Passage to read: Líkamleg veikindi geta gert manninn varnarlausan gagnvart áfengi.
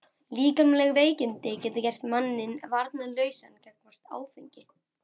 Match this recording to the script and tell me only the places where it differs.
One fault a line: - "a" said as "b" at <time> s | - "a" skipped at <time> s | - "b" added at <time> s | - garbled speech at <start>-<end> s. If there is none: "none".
none